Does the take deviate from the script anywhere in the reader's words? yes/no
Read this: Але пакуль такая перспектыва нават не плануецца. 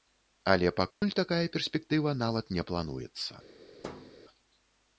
no